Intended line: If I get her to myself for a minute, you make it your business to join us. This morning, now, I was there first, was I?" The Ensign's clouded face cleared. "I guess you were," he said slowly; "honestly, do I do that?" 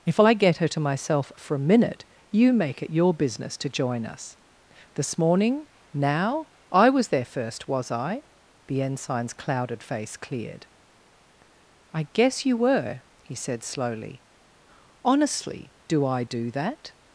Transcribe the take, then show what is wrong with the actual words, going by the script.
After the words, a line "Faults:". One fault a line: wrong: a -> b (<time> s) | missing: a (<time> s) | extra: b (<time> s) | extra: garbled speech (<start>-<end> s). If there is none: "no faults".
If I get her to myself for a minute, you make it your business to join us. This morning, now, I was there first, was I?" The Ensign's clouded face cleared. "I guess you were," he said slowly; "honestly, do I do that?"
Faults:
no faults